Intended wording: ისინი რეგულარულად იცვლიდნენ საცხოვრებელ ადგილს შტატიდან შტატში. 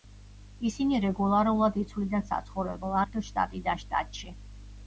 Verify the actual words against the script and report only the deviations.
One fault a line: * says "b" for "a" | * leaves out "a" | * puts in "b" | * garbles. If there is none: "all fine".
all fine